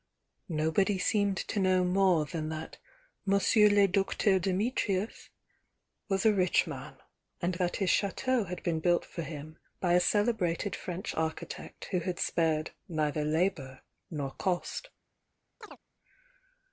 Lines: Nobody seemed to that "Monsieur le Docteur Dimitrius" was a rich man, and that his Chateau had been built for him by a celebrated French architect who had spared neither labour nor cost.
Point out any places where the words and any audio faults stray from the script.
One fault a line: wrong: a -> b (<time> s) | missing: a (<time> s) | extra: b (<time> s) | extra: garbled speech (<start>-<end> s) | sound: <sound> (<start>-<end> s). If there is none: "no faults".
extra: know more than (1.6 s)
sound: chirp (15.6-15.8 s)